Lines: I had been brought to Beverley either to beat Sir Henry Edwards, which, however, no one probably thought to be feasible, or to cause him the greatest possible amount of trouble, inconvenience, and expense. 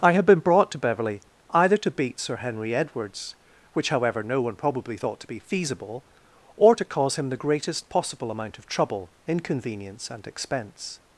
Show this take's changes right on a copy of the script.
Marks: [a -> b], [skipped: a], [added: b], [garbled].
I had been brought to Beverley either to beat Sir Henry Edwards, which, however, no one probably thought to be feasible, or to cause him the greatest possible amount of trouble, inconvenience, and expense.